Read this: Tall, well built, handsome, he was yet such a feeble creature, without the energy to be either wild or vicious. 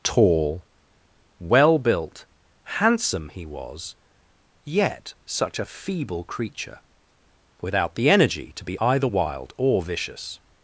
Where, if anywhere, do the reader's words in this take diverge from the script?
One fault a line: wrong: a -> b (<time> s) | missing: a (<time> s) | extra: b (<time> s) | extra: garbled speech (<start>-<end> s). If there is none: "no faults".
no faults